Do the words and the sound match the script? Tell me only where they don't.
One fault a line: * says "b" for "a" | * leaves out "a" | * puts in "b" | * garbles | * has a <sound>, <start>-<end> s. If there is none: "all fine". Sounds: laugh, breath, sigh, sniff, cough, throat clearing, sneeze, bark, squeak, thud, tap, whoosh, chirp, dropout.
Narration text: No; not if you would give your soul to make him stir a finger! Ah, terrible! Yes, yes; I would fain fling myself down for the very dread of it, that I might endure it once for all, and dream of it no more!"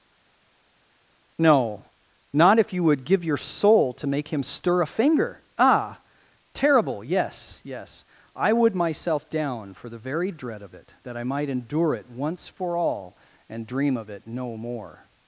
* leaves out "fain fling"